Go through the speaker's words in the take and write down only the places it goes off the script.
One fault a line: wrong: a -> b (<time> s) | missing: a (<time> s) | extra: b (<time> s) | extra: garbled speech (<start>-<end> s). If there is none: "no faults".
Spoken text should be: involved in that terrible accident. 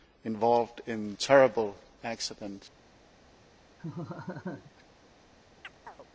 missing: that (1.1 s)